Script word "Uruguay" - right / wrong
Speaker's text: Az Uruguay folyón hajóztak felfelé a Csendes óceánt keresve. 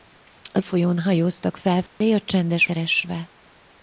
wrong